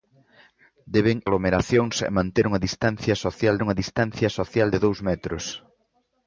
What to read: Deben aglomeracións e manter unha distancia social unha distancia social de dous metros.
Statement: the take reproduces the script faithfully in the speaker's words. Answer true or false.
true